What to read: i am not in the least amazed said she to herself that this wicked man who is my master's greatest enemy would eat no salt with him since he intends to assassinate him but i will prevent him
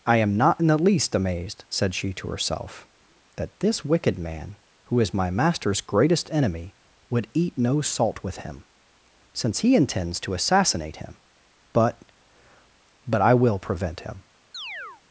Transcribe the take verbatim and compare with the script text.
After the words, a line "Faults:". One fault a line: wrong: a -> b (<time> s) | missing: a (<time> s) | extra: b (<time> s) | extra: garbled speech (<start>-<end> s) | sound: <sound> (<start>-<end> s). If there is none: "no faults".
i am not in the least amazed said she to herself that this wicked man who is my master's greatest enemy would eat no salt with him since he intends to assassinate him but but i will prevent him
Faults:
extra: but (13.1 s)
sound: chirp (14.5-15.0 s)